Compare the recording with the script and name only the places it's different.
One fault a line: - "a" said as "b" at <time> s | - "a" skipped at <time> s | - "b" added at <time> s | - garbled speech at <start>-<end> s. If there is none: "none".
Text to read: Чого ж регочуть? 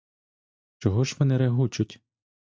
- "вони" added at 1.2 s